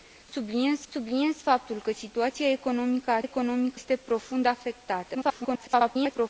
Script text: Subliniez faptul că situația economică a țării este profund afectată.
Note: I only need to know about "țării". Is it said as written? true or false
false